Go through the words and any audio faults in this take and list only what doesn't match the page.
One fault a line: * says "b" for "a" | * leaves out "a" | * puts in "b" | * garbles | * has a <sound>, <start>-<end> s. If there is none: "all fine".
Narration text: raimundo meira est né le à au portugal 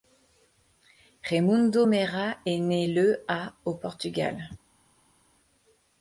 all fine